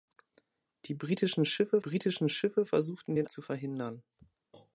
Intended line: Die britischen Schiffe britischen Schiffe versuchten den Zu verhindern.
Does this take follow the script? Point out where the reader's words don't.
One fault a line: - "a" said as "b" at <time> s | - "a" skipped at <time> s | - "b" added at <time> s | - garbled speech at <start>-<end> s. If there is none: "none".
none